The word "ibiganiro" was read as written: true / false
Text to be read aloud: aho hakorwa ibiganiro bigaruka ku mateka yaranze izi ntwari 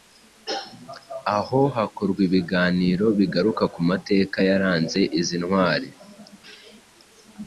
true